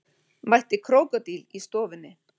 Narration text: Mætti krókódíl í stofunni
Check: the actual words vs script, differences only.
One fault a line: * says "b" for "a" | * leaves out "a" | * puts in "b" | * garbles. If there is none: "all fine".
all fine